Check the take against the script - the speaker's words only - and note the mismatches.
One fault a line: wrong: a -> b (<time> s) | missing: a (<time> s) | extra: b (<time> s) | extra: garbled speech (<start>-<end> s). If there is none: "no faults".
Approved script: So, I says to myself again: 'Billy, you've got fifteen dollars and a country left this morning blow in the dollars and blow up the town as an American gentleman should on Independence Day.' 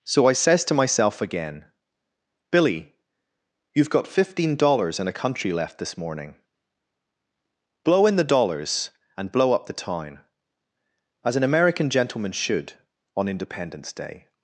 no faults